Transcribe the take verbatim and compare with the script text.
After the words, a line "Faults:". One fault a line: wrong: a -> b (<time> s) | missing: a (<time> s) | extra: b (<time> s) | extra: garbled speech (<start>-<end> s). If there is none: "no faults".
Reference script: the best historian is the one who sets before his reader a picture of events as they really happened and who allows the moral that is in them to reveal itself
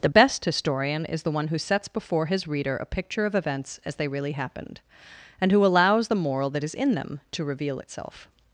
the best historian is the one who sets before his reader a picture of events as they really happened and who allows the moral that is in them to reveal itself
Faults:
no faults